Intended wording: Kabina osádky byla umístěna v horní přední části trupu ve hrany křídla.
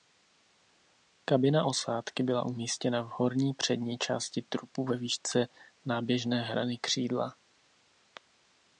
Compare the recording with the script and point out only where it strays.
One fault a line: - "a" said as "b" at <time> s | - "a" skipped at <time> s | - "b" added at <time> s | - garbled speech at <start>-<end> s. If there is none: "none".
- "výšce náběžné" added at 5.0 s